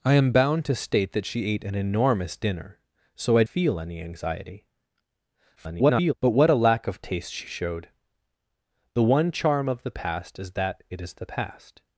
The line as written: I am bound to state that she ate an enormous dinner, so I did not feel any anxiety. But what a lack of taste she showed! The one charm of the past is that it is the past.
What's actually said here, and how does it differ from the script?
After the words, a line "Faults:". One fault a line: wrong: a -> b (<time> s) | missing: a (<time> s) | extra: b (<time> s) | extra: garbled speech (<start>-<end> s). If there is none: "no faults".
I am bound to state that she ate an enormous dinner, so I feel any anxiety. [garbled] But what a lack of taste she showed! The one charm of the past is that it is the past.
Faults:
missing: did not (3.4 s)
extra: garbled speech (5.6-6.1 s)